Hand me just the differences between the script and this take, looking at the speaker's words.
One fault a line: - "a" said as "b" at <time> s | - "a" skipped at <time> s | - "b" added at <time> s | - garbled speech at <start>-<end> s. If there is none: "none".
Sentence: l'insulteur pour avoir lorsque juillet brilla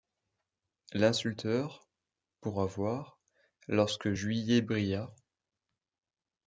none